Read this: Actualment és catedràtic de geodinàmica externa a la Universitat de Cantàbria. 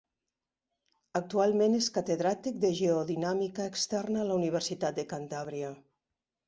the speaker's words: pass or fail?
pass